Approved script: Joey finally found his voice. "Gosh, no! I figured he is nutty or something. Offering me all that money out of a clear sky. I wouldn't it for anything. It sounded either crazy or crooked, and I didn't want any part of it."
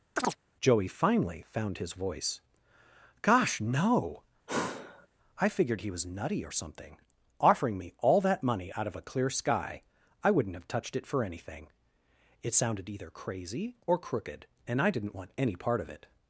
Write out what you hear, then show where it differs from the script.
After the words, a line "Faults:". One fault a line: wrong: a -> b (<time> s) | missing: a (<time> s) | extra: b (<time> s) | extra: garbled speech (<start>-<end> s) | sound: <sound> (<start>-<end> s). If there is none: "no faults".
Joey finally found his voice. "Gosh, no! I figured he was nutty or something. Offering me all that money out of a clear sky. I wouldn't have touched it for anything. It sounded either crazy or crooked, and I didn't want any part of it."
Faults:
sound: chirp (0.2-0.4 s)
sound: sigh (4.5-5.1 s)
wrong: is -> was (5.9 s)
extra: have touched (10.5 s)